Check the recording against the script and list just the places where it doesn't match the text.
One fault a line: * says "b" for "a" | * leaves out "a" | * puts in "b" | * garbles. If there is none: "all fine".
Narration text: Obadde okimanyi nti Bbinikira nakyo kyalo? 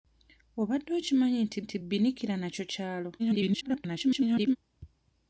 * puts in "nti"
* garbles